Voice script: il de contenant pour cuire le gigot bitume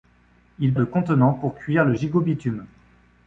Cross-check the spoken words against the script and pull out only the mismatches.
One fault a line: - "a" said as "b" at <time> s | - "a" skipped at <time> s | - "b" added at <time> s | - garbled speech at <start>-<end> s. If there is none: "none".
none